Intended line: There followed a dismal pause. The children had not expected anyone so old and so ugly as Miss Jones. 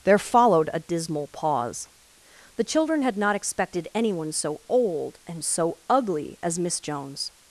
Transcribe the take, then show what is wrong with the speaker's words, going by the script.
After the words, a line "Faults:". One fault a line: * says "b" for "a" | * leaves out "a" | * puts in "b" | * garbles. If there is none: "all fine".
There followed a dismal pause. The children had not expected anyone so old and so ugly as Miss Jones.
Faults:
all fine